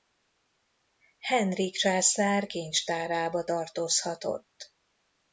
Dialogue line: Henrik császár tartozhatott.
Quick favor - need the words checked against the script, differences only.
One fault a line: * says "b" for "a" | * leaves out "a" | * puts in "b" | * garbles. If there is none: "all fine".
* puts in "kincstárába"